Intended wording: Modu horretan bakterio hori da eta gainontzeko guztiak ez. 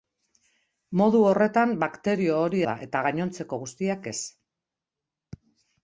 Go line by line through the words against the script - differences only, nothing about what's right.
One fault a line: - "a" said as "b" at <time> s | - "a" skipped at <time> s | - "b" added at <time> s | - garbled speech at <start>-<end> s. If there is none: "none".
none